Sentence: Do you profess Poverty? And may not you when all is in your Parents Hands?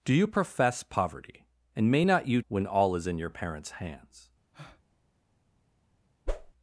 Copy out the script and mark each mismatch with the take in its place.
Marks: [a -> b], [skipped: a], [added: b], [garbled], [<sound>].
Do you profess Poverty? And may not you when all is in your Parents Hands? [breath] [whoosh]